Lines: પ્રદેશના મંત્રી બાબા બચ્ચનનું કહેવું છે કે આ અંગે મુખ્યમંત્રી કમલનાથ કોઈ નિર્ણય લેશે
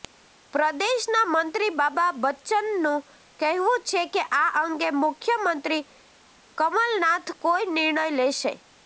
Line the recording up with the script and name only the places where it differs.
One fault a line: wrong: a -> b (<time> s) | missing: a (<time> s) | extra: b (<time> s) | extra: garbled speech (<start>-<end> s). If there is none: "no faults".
no faults